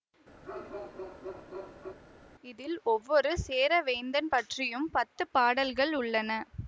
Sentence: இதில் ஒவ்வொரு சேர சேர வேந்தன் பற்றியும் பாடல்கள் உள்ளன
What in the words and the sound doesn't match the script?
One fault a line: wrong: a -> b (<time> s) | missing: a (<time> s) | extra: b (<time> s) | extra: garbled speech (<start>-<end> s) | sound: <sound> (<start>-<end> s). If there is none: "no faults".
sound: bark (0.4-2.0 s)
missing: சேர (3.8 s)
extra: பத்து (5.0 s)